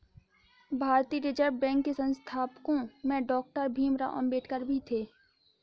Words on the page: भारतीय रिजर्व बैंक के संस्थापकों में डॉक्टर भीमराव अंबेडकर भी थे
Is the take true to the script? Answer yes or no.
yes